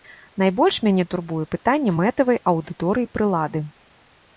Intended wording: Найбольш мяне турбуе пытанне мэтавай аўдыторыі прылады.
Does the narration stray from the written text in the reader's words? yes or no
no